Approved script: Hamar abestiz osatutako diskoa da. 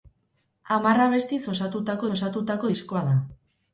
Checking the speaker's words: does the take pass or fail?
fail